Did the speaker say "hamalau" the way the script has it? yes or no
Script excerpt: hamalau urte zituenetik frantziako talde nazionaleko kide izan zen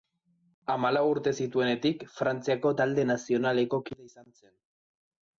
yes